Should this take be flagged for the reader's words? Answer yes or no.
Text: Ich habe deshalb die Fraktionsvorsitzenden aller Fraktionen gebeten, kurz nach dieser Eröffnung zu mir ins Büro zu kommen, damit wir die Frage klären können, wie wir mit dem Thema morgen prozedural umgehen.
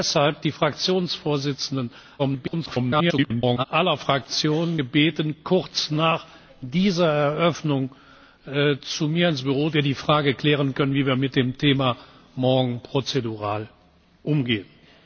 yes